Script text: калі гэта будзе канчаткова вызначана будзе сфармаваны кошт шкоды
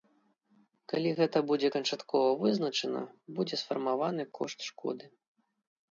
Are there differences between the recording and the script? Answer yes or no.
no